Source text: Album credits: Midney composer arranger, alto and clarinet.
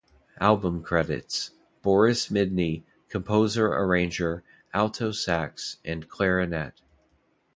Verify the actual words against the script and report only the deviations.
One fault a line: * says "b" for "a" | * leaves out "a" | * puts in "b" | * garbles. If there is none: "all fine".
* puts in "Boris"
* puts in "sax"